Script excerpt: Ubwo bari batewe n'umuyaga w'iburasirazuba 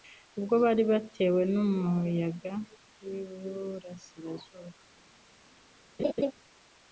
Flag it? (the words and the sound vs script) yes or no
yes